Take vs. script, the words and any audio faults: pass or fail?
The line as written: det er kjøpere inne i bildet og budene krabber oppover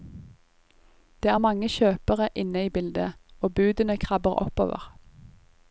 fail